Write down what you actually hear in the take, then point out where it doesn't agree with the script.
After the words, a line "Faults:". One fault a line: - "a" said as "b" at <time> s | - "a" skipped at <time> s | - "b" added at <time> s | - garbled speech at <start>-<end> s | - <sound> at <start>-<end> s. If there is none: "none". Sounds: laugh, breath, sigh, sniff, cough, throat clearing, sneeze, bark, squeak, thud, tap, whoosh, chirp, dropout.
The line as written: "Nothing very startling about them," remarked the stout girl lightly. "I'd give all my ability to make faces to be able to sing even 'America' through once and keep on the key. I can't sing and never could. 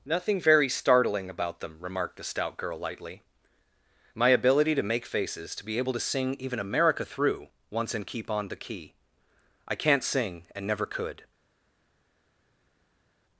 "Nothing very startling about them," remarked the stout girl lightly. "my ability to make faces to be able to sing even 'America' through once and keep on the key. I can't sing and never could.
Faults:
- "I'd give all" skipped at 3.2 s